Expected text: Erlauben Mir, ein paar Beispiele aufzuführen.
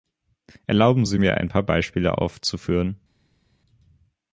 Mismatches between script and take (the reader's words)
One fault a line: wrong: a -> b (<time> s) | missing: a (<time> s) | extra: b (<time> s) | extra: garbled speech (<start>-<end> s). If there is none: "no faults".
extra: Sie (1.0 s)